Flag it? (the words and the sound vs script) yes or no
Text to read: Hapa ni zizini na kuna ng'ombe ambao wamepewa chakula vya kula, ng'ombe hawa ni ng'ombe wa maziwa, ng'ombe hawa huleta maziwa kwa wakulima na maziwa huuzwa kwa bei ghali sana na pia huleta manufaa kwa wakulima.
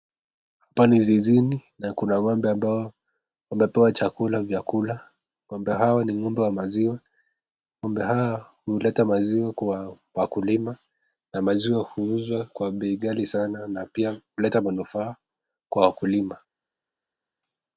no